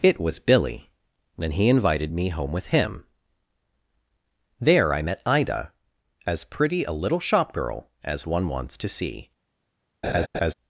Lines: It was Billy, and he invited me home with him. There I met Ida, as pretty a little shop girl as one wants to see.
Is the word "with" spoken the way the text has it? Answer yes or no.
yes